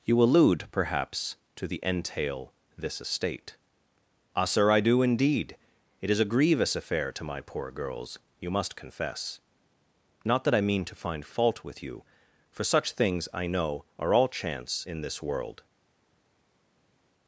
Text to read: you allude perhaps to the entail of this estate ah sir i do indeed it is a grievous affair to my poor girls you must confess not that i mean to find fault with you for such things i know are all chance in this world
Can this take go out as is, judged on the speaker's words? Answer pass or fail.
fail